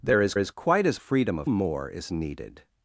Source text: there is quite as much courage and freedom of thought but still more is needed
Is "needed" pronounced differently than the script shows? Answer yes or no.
no